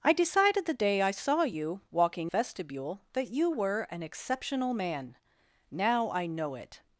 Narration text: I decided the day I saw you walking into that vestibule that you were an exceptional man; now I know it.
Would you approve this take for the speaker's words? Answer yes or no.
no